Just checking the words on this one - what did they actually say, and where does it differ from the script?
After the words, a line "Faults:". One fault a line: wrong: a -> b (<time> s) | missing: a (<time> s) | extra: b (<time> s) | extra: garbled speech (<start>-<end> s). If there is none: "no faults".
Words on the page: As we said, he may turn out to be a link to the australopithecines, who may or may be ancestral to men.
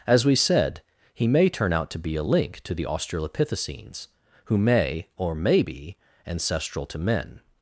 As we said, he may turn out to be a link to the australopithecines, who may or may be ancestral to men.
Faults:
no faults